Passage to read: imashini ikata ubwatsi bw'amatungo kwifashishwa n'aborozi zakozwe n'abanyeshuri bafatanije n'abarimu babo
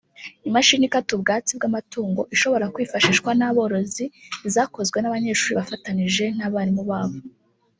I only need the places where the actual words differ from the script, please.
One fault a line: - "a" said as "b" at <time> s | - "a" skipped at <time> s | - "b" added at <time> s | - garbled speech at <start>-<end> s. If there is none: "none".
- "ishobora" added at 2.4 s